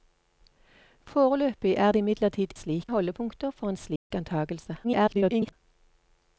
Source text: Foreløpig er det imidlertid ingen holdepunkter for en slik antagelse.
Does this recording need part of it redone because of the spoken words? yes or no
yes